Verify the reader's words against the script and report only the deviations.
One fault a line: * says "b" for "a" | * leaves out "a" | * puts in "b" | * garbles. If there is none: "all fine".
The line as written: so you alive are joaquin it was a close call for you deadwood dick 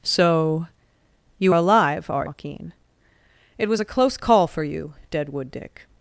all fine